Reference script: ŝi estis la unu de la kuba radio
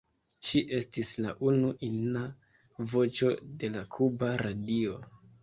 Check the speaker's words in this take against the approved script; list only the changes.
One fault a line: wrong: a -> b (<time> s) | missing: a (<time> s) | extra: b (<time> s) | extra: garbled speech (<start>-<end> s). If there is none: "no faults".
extra: ina voĉo (1.9 s)